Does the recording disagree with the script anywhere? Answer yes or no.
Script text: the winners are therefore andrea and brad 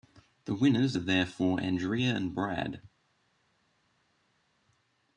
no